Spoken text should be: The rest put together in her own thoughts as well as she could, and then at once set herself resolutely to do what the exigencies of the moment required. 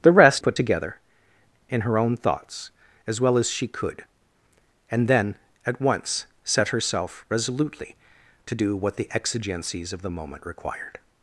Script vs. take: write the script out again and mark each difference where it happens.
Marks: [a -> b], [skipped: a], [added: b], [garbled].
The rest put together in her own thoughts as well as she could, and then at once set herself resolutely to do what the exigencies of the moment required.